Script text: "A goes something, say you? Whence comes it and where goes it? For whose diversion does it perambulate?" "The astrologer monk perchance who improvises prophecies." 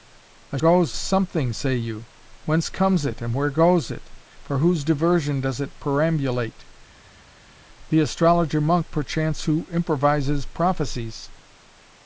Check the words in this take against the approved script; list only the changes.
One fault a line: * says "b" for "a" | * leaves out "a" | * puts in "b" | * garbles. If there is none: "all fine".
all fine